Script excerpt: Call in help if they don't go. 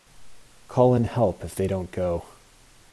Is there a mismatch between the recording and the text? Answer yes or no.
no